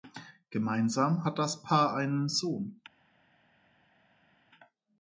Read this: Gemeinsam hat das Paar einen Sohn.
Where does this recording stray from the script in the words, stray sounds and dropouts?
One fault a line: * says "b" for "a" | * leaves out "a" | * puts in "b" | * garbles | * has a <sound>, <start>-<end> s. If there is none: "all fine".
all fine